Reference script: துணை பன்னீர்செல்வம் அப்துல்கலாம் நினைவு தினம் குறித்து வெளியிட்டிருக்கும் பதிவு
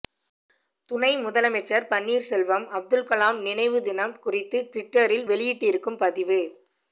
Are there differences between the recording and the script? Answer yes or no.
yes